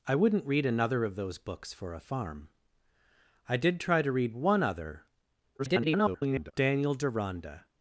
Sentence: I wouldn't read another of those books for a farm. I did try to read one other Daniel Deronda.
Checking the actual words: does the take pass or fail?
fail